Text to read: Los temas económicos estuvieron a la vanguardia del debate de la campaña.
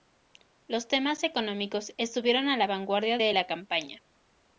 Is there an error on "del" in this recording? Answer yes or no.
yes